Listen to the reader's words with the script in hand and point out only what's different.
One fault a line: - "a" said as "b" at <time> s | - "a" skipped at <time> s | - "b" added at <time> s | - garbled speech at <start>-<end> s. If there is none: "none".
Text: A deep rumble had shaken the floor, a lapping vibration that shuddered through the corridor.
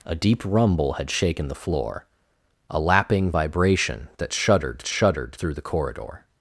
- "shuddered" added at 4.8 s